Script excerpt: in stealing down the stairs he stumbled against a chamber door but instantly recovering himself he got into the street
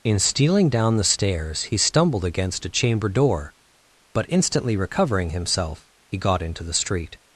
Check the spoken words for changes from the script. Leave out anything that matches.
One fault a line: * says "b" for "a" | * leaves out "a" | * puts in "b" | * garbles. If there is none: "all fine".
all fine